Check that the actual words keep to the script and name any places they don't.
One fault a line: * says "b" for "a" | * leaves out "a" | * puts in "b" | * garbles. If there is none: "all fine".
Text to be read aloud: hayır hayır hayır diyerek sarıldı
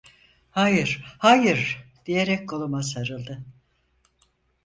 * says "diyerek koluma" for "hayır diyerek"